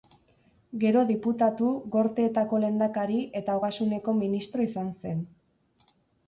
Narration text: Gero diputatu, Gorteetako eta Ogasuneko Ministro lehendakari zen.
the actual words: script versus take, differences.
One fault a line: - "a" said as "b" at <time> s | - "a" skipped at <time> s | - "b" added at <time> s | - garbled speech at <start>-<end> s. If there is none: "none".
- "lehendakari" added at 2.6 s
- "lehendakari" said as "izan" at 4.7 s